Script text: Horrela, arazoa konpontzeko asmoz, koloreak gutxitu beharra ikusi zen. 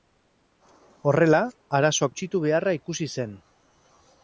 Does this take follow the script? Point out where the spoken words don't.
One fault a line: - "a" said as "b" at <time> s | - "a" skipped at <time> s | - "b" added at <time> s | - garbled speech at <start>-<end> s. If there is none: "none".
- "konpontzeko asmoz koloreak" skipped at 2.1 s